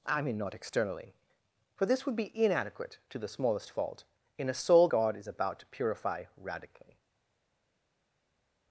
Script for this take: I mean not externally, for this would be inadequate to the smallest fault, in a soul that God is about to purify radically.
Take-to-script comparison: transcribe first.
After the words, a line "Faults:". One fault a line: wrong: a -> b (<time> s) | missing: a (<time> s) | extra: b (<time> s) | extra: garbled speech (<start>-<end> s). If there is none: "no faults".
I mean not externally, for this would be inadequate to the smallest fault, in a soul God is about to purify radically.
Faults:
missing: that (4.9 s)